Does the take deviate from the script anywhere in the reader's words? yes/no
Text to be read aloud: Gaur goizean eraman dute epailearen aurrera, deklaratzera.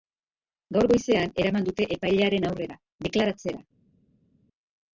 no